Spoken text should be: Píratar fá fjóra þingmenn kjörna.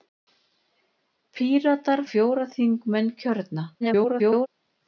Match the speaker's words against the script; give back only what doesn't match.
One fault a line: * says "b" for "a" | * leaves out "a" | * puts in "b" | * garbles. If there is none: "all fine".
* leaves out "fá"
* garbles